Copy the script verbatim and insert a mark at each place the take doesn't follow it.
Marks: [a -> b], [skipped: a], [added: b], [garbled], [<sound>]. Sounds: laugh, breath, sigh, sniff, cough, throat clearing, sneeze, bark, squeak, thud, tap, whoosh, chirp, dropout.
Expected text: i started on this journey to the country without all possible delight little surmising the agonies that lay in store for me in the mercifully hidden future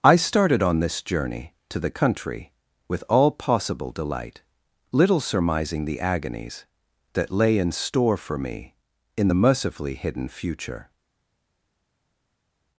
i started on this journey to the country [without -> with] all possible delight little surmising the agonies that lay in store for me in the mercifully hidden future